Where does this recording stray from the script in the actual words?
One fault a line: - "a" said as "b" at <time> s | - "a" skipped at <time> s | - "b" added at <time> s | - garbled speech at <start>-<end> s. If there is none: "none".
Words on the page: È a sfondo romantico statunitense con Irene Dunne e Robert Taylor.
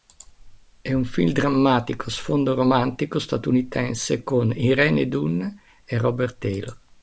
- "un film drammatico" added at 0.9 s